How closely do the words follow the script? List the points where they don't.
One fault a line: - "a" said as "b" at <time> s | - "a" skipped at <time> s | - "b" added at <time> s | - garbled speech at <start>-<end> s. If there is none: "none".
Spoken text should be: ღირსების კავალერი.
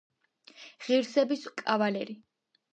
none